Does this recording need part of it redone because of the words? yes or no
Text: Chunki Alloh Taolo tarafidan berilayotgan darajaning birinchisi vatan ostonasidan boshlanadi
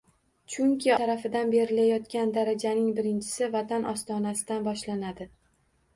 yes